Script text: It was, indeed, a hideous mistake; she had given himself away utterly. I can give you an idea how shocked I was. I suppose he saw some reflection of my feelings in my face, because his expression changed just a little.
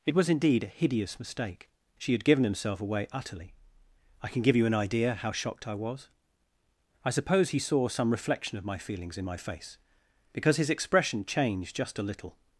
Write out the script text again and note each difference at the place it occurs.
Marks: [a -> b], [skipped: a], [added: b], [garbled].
It was, indeed, a hideous mistake; she had given himself away utterly. I can give you an idea how shocked I was. I suppose he saw some reflection of my feelings in my face, because his expression changed just a little.